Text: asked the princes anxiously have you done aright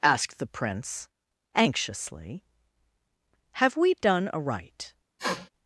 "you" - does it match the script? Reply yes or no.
no